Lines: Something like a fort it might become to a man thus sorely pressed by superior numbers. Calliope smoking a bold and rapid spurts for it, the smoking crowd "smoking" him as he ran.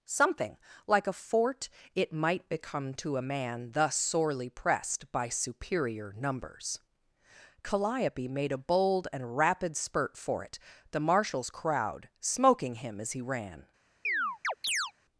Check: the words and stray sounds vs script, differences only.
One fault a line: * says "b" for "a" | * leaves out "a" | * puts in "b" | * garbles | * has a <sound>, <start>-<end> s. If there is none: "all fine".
* says "made" for "smoking"
* says "spurt" for "spurts"
* says "marshal's" for "smoking"
* has a chirp, 14.0-14.9 s